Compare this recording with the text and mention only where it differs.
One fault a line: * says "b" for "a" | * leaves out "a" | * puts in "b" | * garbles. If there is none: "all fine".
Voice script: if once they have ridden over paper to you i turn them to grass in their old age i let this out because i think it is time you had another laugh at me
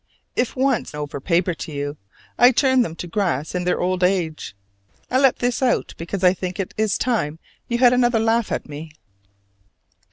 * leaves out "they have ridden"